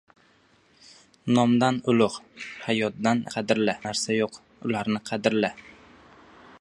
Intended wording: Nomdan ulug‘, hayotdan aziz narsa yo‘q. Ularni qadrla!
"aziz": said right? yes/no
no